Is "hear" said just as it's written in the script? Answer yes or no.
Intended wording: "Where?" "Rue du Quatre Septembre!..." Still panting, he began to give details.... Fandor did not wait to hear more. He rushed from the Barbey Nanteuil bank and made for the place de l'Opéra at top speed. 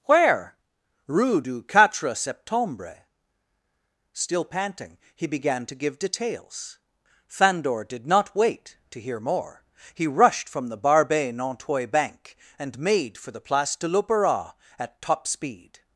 yes